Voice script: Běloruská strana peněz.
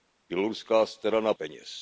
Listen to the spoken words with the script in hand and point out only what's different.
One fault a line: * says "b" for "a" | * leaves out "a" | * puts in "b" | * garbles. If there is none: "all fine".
all fine